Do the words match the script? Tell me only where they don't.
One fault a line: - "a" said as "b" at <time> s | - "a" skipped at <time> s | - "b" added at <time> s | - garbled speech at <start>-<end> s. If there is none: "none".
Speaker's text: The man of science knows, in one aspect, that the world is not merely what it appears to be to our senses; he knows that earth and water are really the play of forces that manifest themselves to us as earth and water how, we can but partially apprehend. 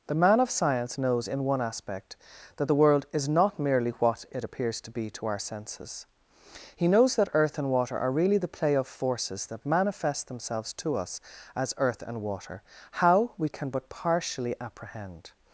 none